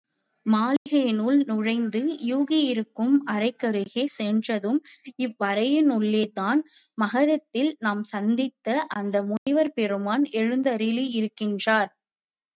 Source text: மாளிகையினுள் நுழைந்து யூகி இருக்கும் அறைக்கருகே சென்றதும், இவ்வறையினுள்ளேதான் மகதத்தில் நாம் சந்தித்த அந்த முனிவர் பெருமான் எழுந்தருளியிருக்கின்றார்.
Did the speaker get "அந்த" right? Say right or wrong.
right